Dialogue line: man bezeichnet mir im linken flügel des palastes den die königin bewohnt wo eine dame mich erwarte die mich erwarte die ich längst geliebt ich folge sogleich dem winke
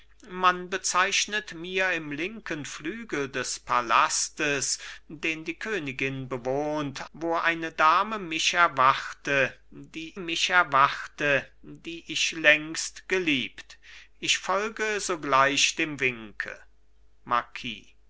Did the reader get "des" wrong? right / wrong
right